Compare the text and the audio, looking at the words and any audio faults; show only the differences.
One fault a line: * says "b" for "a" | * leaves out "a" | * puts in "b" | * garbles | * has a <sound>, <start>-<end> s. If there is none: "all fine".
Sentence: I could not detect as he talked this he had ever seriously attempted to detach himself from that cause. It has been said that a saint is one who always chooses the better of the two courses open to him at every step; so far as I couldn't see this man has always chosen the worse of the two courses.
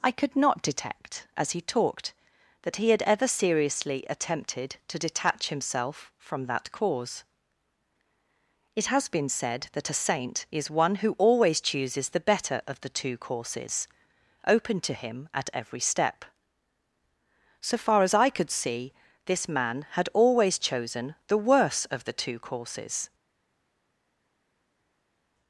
* says "that" for "this"
* says "could" for "couldn't"
* says "had" for "has"